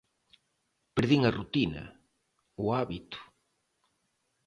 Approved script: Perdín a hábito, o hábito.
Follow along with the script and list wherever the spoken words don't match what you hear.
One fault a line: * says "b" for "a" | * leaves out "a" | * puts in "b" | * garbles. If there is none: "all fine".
* says "rutina" for "hábito"